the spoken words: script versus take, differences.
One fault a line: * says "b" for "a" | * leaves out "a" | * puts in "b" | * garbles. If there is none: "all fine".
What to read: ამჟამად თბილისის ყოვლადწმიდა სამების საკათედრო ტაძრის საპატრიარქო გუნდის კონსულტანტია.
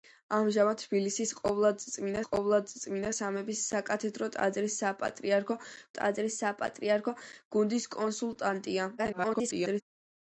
* puts in "ყოვლადწმიდა"
* puts in "ტაძრის საპატრიარქო"
* garbles